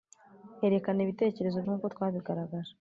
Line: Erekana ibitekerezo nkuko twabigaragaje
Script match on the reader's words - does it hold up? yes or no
yes